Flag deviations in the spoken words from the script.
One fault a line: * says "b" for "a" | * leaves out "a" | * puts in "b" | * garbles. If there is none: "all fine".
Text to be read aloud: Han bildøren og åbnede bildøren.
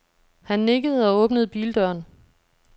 * says "nikkede" for "bildøren"